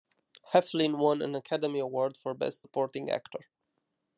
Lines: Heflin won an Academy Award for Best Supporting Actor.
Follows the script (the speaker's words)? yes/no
yes